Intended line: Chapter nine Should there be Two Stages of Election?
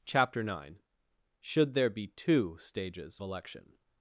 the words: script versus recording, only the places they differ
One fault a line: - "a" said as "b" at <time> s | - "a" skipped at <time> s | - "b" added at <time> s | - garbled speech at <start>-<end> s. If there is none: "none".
- "of" skipped at 3.2 s